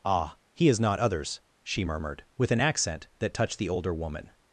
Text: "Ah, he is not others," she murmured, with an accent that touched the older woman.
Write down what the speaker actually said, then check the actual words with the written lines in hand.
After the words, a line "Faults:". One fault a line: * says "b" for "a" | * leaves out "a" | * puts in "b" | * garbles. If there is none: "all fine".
"Ah, he is not others," she murmured, with an accent that touched the older woman.
Faults:
all fine